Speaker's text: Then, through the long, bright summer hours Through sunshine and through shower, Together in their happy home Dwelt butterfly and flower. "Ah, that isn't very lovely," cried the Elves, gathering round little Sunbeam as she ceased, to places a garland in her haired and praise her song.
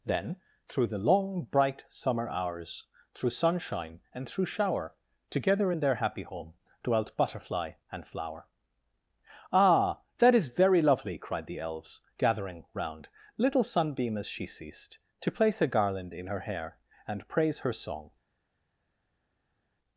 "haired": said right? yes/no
no